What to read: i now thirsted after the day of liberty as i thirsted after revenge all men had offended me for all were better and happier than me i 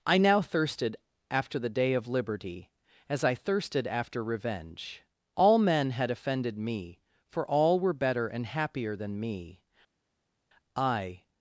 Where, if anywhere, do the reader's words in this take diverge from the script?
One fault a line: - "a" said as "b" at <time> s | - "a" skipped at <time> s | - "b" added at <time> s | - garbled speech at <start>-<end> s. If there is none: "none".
none